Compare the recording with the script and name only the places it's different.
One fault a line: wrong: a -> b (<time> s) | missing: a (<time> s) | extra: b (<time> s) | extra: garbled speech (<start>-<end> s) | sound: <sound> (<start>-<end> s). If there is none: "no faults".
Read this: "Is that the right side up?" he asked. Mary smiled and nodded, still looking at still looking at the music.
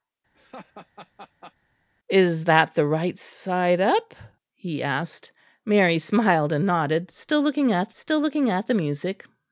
sound: laugh (0.3-1.5 s)